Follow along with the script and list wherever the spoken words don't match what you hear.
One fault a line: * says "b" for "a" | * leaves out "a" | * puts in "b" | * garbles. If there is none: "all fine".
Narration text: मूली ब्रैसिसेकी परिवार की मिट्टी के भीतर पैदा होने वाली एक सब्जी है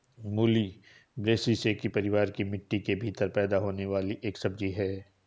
all fine